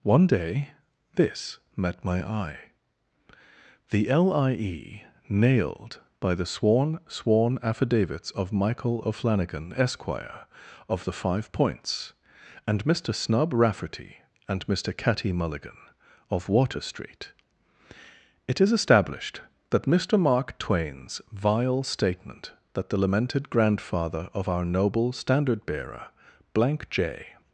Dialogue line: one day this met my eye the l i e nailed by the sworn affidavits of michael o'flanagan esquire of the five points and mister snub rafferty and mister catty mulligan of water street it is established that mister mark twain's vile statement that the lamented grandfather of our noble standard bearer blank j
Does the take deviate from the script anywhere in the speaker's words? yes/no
yes